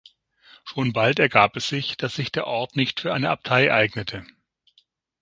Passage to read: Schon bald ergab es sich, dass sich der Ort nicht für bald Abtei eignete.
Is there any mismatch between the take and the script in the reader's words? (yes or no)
yes